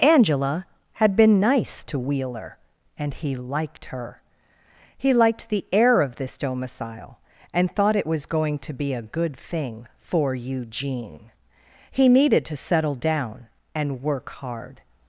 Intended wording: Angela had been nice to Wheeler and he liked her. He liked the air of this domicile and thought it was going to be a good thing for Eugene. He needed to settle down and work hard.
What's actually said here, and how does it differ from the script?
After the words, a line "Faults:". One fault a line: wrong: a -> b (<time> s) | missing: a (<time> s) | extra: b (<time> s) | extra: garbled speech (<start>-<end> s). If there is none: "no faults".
Angela had been nice to Wheeler and he liked her. He liked the air of this domicile and thought it was going to be a good thing for Eugene. He needed to settle down and work hard.
Faults:
no faults